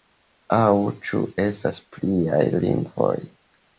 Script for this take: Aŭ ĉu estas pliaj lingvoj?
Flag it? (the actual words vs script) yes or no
no